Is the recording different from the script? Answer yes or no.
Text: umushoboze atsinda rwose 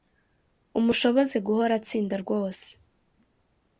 yes